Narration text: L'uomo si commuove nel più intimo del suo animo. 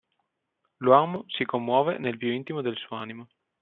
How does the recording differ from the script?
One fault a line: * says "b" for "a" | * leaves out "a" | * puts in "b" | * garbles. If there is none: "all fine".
all fine